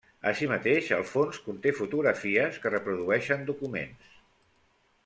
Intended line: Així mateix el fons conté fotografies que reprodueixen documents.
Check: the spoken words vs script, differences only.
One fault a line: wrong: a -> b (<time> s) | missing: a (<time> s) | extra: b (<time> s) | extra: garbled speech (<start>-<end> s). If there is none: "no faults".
no faults